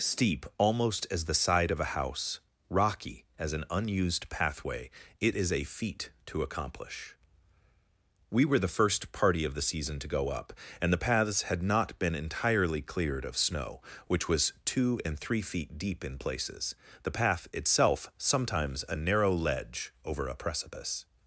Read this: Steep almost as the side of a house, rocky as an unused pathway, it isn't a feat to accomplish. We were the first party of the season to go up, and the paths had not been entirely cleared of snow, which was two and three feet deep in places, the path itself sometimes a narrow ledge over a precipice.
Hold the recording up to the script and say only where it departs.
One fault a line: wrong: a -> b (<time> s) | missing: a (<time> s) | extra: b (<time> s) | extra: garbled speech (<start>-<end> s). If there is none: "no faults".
wrong: isn't -> is (5.4 s)